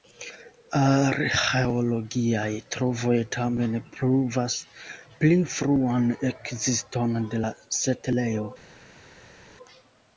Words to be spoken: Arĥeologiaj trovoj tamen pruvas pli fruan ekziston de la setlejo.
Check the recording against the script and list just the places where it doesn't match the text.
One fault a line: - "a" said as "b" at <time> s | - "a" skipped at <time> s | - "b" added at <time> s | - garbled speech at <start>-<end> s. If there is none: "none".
none